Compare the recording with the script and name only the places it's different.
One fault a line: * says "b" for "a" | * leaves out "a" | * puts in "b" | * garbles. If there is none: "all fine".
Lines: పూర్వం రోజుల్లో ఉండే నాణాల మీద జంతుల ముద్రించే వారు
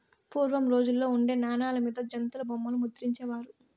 * puts in "బొమ్మలు"